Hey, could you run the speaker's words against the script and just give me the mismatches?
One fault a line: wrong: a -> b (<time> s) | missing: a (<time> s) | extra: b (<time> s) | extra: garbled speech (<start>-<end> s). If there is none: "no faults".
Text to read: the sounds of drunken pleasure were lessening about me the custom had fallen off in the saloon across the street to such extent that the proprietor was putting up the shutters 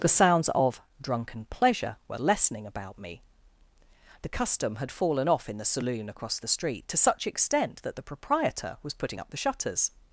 no faults